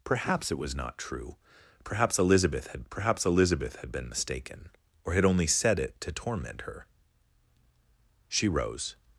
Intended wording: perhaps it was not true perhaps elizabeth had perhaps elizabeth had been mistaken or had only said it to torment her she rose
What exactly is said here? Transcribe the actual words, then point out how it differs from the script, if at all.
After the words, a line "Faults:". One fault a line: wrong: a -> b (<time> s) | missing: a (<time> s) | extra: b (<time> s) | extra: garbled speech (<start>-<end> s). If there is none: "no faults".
perhaps it was not true perhaps elizabeth had perhaps elizabeth had been mistaken or had only said it to torment her she rose
Faults:
no faults